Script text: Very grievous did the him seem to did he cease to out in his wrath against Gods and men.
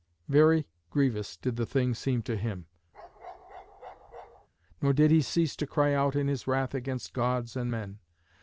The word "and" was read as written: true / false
true